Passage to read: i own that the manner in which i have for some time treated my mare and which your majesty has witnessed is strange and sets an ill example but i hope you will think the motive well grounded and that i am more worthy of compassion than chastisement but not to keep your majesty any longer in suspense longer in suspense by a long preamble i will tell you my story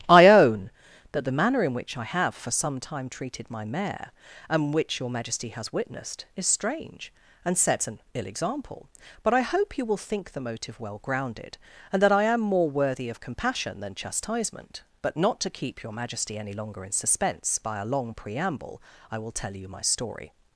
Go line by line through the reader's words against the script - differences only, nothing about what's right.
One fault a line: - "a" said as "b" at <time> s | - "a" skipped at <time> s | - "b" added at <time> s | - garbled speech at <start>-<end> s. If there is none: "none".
- "longer in suspense" skipped at 17.6 s